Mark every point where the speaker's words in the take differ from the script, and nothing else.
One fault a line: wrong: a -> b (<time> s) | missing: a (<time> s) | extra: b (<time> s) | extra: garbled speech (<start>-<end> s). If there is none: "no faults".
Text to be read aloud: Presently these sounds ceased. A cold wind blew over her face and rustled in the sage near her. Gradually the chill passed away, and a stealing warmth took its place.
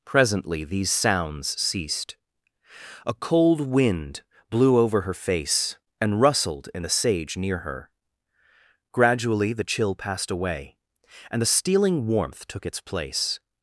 wrong: a -> the (11.4 s)